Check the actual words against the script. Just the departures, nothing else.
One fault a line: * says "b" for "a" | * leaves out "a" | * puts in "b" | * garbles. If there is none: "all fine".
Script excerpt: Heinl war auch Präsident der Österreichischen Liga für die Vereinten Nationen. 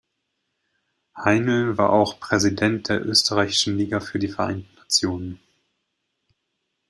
all fine